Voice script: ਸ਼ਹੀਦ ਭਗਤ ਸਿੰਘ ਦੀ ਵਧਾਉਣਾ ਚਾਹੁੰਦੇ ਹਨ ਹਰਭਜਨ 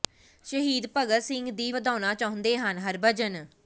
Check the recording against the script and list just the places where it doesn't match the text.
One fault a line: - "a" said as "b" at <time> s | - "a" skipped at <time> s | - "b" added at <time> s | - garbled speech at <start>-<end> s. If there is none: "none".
none